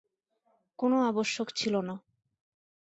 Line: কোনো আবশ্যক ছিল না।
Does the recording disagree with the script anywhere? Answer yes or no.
no